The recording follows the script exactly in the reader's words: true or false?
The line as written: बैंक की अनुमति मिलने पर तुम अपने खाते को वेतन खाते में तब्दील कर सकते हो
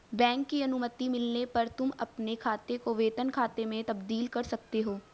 true